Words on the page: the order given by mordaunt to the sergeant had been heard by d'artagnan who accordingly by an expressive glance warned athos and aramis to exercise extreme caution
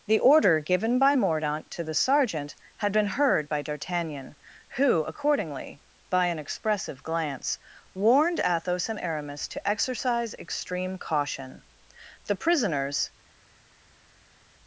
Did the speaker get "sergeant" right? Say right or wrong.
right